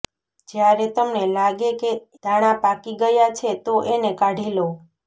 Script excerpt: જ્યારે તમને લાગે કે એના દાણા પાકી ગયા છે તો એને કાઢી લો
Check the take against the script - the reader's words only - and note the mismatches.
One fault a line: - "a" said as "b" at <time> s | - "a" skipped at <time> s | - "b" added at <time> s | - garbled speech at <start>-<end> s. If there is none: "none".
- "એના" skipped at 1.9 s